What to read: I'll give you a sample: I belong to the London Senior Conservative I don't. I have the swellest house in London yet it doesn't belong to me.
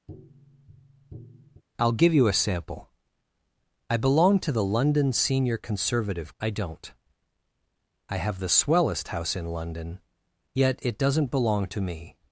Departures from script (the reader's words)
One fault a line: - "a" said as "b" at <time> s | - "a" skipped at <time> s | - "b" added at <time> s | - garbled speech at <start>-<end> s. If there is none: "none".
none